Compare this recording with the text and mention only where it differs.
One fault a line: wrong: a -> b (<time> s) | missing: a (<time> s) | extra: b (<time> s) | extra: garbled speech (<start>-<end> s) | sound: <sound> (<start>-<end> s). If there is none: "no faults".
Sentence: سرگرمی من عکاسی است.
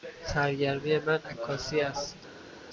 no faults